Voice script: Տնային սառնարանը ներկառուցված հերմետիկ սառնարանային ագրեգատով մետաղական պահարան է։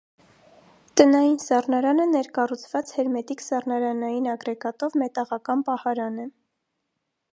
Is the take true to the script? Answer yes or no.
yes